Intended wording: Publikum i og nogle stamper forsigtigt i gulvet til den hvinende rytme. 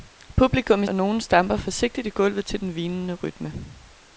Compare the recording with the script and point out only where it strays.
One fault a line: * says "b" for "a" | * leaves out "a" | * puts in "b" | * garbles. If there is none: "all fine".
all fine